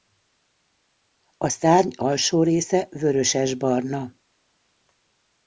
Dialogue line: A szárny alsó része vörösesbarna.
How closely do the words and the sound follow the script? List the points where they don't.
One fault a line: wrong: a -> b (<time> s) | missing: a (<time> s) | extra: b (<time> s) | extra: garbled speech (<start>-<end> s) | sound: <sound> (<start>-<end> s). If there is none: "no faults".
no faults